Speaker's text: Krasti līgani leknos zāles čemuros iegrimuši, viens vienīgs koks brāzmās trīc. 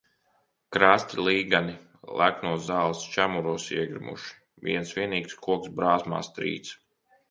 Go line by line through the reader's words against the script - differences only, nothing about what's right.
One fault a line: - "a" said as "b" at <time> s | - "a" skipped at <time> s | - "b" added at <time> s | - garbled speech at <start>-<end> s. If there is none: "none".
none